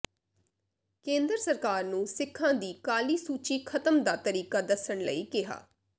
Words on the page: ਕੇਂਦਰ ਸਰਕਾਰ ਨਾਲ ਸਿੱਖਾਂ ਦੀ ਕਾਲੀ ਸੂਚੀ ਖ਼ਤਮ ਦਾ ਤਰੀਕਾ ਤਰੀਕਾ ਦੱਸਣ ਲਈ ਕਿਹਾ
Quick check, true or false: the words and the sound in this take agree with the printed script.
false